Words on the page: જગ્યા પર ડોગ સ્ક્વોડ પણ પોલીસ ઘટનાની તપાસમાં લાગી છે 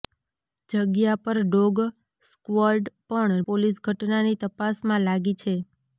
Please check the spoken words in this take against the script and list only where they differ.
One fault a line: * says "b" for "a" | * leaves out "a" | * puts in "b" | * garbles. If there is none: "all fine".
all fine